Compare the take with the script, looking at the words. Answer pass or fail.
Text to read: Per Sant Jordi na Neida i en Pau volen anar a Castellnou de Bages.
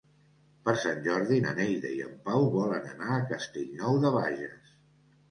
pass